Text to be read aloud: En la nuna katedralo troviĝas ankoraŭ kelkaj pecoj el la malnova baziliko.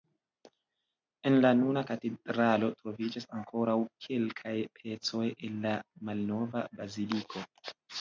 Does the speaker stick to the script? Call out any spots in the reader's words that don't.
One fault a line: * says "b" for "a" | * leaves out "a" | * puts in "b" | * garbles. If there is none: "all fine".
all fine